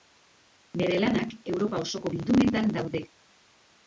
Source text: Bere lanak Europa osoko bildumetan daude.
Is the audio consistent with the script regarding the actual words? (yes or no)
yes